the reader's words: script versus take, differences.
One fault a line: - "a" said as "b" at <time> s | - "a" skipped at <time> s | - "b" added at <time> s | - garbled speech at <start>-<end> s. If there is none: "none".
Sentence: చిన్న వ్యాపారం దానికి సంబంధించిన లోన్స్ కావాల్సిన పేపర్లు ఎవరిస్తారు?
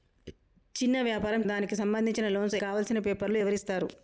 none